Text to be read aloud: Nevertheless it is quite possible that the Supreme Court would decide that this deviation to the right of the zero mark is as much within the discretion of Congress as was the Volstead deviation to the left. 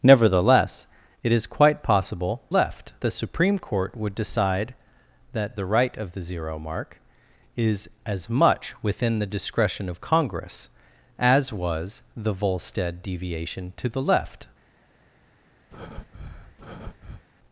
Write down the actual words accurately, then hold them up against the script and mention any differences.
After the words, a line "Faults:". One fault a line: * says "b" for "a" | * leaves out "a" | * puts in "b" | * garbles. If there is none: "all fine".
Nevertheless it is quite possible left the Supreme Court would decide that the right of the zero mark is as much within the discretion of Congress as was the Volstead deviation to the left.
Faults:
* says "left" for "that"
* leaves out "this deviation to"